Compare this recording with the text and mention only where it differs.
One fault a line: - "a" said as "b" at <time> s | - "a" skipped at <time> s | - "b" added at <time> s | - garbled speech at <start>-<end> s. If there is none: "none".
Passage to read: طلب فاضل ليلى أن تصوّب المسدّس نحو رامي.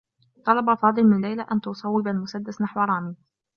- "من" added at 1.0 s